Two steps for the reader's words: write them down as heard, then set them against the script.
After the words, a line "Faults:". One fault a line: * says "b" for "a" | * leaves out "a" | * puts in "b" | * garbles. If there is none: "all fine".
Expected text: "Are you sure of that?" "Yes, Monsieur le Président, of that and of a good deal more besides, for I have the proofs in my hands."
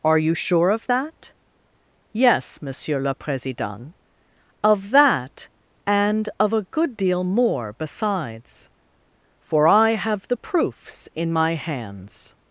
"Are you sure of that?" "Yes, Monsieur le Président, of that and of a good deal more besides, for I have the proofs in my hands."
Faults:
all fine